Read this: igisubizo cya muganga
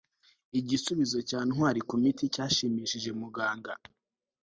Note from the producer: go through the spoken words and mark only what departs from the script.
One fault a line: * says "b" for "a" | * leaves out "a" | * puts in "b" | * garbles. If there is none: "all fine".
* puts in "ntwali kumiti cyashimishije"